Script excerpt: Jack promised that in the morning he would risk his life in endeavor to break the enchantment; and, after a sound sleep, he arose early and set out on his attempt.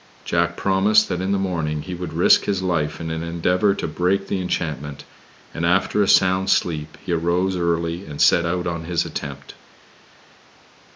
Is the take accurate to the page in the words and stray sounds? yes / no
no